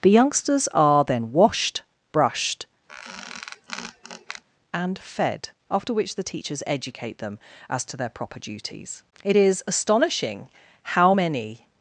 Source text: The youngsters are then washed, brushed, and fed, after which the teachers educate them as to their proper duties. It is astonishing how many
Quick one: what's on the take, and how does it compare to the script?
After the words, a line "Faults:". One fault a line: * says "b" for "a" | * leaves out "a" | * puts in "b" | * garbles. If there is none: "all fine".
The youngsters are then washed, brushed, and fed, after which the teachers educate them as to their proper duties. It is astonishing how many
Faults:
all fine